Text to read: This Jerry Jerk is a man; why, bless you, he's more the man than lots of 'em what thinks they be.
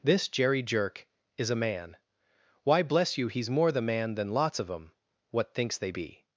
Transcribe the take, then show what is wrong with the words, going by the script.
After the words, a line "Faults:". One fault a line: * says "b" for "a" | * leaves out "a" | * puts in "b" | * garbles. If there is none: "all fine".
This Jerry Jerk is a man; why, bless you, he's more the man than lots of 'em what thinks they be.
Faults:
all fine